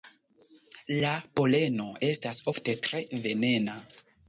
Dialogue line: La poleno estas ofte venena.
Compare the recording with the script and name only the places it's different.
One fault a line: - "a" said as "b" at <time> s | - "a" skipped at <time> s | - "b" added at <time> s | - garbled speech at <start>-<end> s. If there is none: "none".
- "tre" added at 2.9 s